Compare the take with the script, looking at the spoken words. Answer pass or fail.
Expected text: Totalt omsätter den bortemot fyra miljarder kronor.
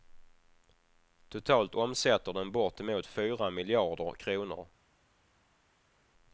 pass